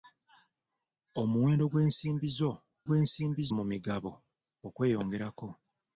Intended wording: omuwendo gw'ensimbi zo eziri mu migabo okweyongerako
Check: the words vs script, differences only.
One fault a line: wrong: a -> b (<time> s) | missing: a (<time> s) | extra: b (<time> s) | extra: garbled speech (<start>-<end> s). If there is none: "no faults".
wrong: eziri -> gw'ensimbi (2.9 s)